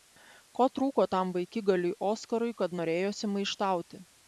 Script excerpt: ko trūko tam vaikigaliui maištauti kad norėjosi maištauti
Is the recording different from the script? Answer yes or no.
yes